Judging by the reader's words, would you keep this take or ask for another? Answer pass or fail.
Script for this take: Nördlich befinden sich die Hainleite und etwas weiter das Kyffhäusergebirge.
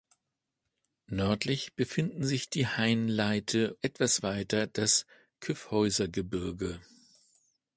fail